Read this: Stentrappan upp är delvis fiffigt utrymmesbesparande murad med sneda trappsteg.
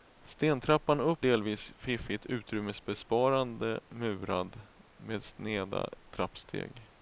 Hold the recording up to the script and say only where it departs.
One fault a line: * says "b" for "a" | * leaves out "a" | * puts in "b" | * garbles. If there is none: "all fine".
* leaves out "är"